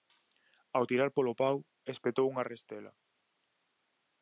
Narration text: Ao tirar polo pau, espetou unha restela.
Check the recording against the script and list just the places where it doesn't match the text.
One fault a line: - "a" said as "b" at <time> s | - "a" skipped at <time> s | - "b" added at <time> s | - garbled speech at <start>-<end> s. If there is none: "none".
none